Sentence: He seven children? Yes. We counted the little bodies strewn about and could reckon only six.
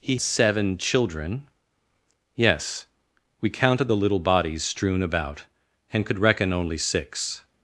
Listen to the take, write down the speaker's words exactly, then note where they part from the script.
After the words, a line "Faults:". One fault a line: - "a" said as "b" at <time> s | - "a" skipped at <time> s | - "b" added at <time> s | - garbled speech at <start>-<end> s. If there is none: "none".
He seven children? Yes. We counted the little bodies strewn about and could reckon only six.
Faults:
none